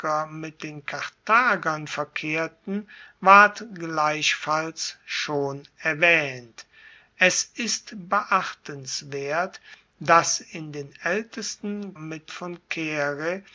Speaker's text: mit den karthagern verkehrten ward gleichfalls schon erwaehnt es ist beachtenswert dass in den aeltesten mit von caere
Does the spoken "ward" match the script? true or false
true